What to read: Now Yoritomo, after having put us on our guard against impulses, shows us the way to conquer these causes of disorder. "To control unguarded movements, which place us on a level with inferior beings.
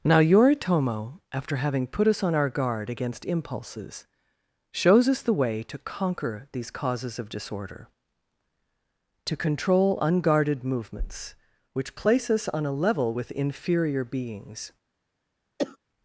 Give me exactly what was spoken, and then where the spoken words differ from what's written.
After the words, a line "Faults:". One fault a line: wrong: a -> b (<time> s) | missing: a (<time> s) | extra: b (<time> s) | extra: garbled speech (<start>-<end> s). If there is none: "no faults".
Now Yoritomo, after having put us on our guard against impulses, shows us the way to conquer these causes of disorder. "To control unguarded movements, which place us on a level with inferior beings.
Faults:
no faults